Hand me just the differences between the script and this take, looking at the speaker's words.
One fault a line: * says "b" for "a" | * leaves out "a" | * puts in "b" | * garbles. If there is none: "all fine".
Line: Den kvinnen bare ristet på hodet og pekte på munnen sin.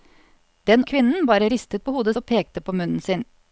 all fine